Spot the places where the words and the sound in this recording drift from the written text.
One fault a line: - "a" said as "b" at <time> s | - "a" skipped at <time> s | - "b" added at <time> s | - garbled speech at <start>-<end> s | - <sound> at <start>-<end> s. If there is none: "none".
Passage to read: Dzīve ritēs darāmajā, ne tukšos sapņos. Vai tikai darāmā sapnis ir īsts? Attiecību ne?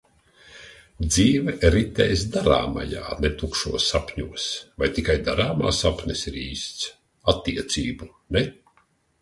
none